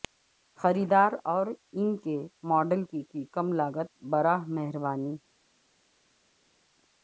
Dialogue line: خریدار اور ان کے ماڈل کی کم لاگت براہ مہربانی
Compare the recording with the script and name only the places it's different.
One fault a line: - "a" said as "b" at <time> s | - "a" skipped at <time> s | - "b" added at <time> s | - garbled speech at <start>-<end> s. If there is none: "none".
- "کی" added at 3.1 s